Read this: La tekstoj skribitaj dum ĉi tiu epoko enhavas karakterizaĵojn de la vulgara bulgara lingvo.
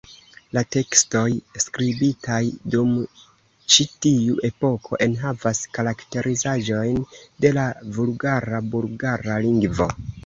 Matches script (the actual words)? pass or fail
pass